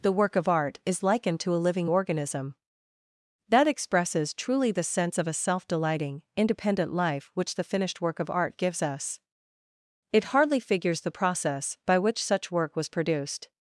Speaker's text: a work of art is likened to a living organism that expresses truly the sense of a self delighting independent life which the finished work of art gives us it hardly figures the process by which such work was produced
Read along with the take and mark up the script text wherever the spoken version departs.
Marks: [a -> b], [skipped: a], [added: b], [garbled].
[a -> the] work of art is likened to a living organism that expresses truly the sense of a self delighting independent life which the finished work of art gives us it hardly figures the process by which such work was produced